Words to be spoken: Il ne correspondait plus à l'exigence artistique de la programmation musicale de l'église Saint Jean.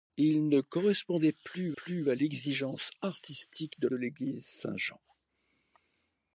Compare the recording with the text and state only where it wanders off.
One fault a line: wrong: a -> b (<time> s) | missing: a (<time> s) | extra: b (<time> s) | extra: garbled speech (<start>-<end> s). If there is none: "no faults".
extra: plus (1.8 s)
missing: la programmation musicale (3.9 s)